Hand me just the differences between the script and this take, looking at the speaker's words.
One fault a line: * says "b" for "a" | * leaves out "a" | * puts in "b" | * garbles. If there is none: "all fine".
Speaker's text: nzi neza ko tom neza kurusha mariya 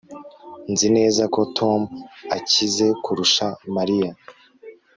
* says "akize" for "neza"